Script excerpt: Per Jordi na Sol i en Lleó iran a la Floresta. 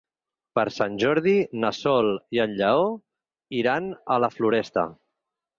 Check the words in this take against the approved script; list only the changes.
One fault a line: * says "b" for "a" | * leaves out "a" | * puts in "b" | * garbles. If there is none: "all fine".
* puts in "Sant"